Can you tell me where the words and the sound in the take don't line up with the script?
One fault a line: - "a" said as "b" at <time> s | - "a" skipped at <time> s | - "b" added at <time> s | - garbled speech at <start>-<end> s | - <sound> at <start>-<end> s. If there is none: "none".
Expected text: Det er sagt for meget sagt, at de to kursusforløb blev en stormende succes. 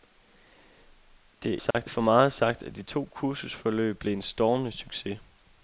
- dropout at 1.7-1.7 s